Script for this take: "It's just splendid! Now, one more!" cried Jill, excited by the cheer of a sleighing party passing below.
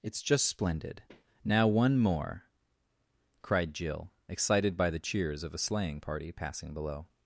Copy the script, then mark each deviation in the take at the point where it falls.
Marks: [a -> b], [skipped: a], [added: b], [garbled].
"It's just splendid! Now, one more!" cried Jill, excited by the [cheer -> cheers] of a sleighing party passing below.